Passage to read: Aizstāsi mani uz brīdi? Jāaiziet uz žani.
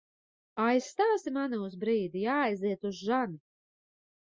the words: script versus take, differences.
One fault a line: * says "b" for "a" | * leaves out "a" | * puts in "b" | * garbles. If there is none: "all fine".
all fine